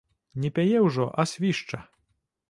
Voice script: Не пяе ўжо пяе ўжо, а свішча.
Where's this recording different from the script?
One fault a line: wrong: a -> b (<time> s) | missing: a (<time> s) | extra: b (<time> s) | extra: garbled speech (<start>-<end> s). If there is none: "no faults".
missing: пяе ўжо (1.1 s)